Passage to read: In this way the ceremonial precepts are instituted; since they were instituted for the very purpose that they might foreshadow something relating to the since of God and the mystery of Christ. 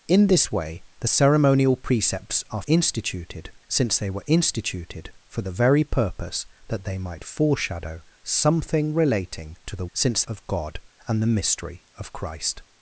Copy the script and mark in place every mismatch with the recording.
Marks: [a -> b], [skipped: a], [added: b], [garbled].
In this way the ceremonial precepts are instituted; since they were instituted for the very purpose that they might foreshadow something relating to the since of God and the mystery of Christ.